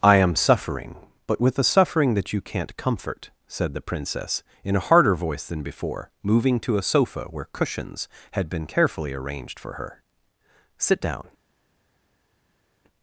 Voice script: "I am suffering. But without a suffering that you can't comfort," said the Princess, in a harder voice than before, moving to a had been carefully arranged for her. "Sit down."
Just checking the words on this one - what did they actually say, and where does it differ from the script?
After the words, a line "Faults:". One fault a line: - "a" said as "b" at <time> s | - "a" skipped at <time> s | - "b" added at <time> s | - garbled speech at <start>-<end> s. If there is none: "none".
"I am suffering. But with a suffering that you can't comfort," said the Princess, in a harder voice than before, moving to a sofa where cushions had been carefully arranged for her. "Sit down."
Faults:
- "without" said as "with" at 1.4 s
- "sofa where cushions" added at 6.8 s